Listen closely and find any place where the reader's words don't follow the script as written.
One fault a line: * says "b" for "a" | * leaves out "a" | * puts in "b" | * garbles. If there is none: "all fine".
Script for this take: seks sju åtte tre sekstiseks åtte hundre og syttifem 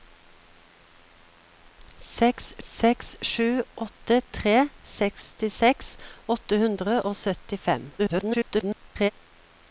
* puts in "seks"
* garbles